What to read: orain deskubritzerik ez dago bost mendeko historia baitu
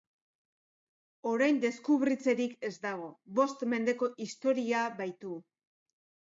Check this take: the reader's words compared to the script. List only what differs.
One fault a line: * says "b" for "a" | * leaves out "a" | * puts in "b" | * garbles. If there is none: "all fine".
all fine